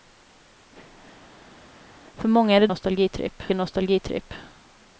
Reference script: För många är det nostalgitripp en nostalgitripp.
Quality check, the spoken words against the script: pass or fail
pass